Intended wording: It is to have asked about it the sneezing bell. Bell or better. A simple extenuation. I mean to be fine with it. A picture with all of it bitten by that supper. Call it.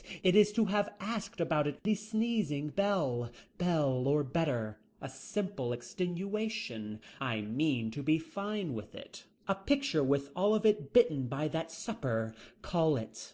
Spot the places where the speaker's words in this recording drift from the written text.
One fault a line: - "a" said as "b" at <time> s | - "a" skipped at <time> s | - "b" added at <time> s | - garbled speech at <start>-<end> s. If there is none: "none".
none